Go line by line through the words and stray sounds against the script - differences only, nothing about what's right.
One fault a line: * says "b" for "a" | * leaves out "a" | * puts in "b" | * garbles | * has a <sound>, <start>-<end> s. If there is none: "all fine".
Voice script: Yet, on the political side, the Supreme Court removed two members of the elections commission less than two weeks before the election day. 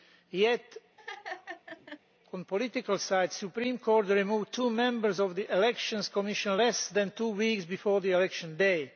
* has a laugh, 1.0-2.0 s